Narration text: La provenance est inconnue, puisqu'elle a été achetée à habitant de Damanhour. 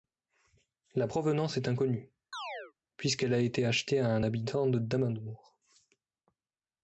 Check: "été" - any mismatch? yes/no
no